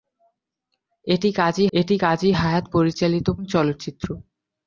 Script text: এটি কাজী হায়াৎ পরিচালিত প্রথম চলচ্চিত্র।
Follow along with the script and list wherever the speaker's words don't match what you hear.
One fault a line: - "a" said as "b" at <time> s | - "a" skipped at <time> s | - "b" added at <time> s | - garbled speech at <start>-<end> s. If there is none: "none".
- "এটি কাজী" added at 1.7 s
- "প্রথম" skipped at 3.3 s